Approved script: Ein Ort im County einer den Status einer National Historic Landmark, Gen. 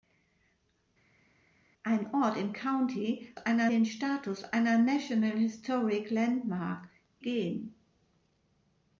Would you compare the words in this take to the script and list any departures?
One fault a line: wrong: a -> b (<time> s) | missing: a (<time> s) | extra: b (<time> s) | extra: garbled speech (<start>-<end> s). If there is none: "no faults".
no faults